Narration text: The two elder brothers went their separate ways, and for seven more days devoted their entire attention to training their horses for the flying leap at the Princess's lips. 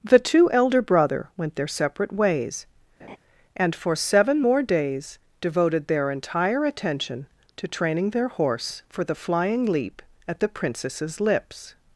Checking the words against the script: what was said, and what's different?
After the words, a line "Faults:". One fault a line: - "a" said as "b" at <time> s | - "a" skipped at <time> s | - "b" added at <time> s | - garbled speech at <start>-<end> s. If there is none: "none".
The two elder brother went their separate ways, and for seven more days devoted their entire attention to training their horse for the flying leap at the Princess's lips.
Faults:
- "brothers" said as "brother" at 0.8 s
- "horses" said as "horse" at 8.3 s